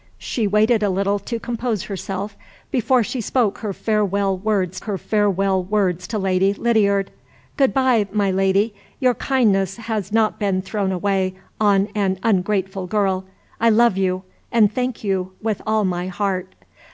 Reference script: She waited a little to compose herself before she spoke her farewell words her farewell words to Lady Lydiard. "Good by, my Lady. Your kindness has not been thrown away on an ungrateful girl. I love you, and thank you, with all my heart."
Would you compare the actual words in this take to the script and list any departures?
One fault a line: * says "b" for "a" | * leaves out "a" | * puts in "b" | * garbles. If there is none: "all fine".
all fine